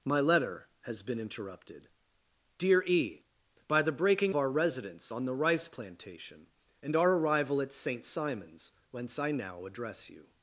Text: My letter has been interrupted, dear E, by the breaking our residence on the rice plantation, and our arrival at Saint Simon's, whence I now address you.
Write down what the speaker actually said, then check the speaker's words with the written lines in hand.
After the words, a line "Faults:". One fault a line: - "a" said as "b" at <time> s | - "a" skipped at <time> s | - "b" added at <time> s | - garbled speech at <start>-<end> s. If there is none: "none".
My letter has been interrupted, dear E, by the breaking our residence on the rice plantation, and our arrival at Saint Simon's, whence I now address you.
Faults:
none